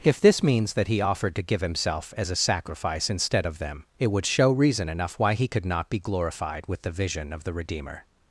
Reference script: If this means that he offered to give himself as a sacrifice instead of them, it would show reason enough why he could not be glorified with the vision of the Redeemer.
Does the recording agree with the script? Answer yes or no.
yes